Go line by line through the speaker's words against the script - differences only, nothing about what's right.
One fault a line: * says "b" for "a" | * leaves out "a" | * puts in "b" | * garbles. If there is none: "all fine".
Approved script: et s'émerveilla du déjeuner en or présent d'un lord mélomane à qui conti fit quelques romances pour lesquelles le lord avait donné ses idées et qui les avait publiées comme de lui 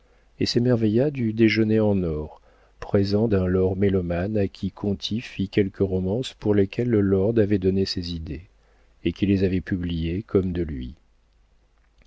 all fine